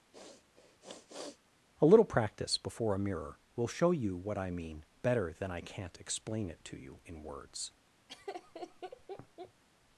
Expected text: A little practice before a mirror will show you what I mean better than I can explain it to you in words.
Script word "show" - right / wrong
right